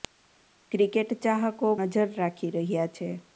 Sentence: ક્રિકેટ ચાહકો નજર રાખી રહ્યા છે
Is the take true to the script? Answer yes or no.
yes